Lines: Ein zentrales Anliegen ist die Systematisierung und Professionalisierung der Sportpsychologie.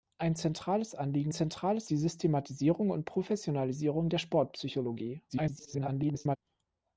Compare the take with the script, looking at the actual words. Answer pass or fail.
fail